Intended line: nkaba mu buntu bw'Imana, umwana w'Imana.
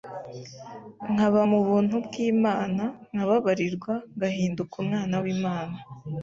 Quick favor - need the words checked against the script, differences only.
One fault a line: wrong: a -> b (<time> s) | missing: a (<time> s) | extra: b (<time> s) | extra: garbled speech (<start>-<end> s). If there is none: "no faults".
extra: nkababarirwa ngahinduka (3.1 s)